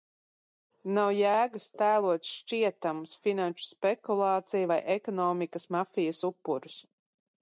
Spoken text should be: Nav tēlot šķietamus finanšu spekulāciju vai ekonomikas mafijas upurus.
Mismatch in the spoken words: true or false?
true